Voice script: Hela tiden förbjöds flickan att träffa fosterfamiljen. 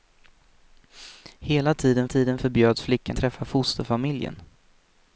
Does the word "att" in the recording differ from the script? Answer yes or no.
yes